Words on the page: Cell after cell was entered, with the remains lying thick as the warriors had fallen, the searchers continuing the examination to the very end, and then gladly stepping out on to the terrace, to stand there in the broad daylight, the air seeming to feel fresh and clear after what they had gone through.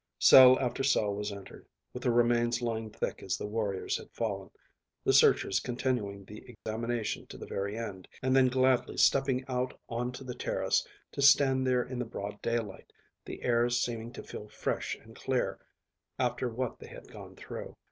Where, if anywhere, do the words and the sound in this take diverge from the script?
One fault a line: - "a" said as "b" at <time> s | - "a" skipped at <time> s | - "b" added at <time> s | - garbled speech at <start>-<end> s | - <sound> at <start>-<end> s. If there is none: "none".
- dropout at 6.5-6.7 s